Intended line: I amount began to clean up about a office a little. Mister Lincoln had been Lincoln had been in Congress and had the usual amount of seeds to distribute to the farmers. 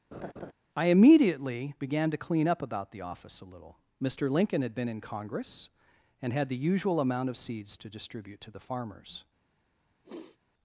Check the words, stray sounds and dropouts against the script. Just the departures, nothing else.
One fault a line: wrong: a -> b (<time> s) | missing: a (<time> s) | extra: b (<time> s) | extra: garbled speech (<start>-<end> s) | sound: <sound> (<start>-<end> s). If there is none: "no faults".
sound: laugh (0.1-0.5 s)
wrong: amount -> immediately (0.9 s)
wrong: a -> the (2.9 s)
missing: Lincoln had been (4.9 s)
sound: sniff (10.0-10.4 s)